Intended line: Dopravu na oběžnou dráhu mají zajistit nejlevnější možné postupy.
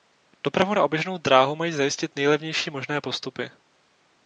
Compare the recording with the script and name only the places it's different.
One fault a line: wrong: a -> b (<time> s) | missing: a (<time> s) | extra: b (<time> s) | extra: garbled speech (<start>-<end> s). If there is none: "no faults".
no faults